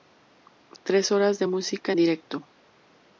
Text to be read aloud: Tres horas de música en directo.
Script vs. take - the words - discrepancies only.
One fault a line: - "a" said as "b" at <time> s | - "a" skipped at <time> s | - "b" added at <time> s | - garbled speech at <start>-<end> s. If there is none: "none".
none